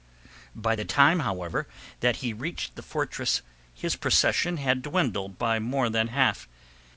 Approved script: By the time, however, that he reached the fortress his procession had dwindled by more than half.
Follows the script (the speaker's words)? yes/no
yes